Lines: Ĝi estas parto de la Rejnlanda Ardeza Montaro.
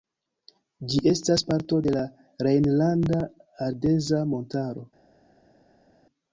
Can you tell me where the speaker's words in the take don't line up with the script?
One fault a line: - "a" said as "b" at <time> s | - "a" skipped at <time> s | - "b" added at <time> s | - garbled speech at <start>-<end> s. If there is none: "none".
none